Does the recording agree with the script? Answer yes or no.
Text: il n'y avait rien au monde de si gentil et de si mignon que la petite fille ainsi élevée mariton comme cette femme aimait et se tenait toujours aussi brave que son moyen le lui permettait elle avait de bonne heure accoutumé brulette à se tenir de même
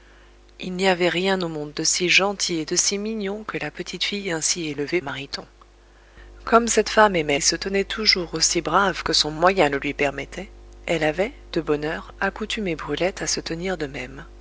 yes